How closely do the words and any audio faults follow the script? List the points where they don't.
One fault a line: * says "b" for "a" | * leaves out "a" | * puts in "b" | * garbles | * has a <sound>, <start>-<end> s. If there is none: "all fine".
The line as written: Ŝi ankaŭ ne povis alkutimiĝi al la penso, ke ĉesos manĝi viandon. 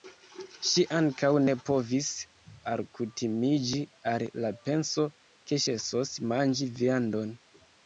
all fine